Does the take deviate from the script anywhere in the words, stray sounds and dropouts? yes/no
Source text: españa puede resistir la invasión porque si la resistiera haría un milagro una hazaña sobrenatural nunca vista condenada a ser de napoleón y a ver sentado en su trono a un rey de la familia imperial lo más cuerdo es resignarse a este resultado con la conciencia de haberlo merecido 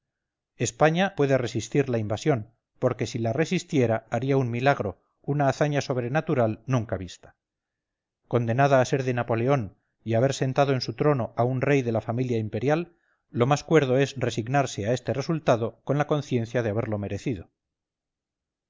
no